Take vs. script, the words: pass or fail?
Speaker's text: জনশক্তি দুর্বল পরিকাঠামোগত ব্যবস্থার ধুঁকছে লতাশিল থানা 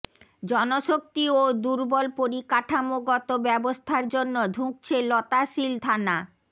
fail